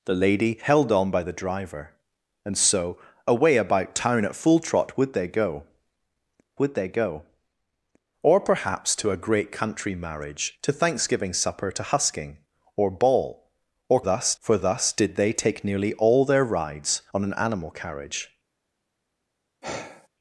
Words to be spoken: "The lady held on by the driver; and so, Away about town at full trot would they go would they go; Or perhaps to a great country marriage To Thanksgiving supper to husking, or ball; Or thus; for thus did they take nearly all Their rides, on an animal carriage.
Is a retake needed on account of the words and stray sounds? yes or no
yes